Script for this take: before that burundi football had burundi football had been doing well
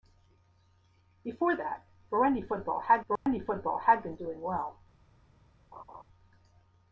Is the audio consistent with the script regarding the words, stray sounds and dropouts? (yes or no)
no